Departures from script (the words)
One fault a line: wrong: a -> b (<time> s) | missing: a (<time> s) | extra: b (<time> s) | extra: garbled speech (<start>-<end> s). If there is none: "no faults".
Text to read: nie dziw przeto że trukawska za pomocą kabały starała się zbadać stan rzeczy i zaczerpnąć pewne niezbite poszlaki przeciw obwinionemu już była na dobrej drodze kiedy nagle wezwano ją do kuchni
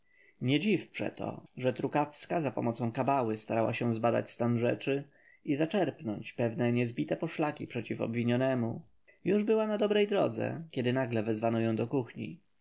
no faults